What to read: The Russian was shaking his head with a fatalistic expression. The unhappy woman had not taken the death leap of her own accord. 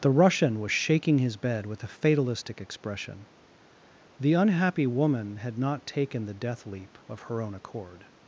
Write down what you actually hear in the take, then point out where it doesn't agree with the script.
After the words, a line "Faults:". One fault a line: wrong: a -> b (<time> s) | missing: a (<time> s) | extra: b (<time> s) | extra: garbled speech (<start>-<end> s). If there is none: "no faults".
The Russian was shaking his bed with a fatalistic expression. The unhappy woman had not taken the death leap of her own accord.
Faults:
wrong: head -> bed (1.3 s)